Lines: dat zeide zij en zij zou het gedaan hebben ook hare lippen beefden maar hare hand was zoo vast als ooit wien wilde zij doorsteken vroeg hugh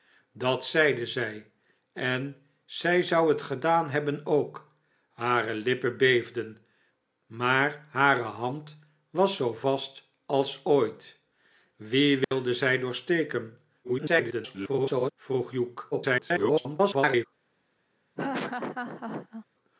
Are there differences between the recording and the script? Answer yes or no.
yes